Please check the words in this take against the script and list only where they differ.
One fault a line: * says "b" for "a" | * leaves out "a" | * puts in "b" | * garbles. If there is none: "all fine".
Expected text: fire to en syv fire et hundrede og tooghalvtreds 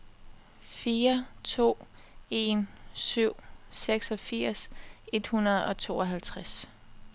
* says "seksogfirs" for "fire"